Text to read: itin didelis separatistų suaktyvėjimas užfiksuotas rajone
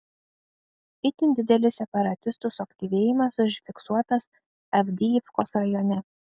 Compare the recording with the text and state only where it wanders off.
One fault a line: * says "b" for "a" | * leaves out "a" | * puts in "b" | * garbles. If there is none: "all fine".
* puts in "avdijivkos"